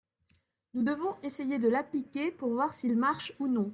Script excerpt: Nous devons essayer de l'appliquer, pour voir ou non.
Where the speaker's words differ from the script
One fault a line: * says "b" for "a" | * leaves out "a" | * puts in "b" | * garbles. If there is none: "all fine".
* puts in "s'il marche"